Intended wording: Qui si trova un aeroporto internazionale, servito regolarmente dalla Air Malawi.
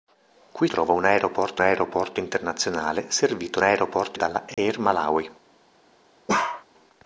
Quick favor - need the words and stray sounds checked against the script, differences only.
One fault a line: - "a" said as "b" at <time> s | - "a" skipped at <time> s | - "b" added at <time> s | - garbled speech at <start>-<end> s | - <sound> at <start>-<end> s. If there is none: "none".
- "si" skipped at 0.7 s
- "aeroporto" added at 1.6 s
- "regolarmente" said as "aeroporto" at 3.6 s
- dropout at 4.5-4.6 s
- bark at 6.3-6.6 s